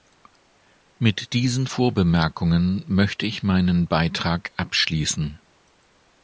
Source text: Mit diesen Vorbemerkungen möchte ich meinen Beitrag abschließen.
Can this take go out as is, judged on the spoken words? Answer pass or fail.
pass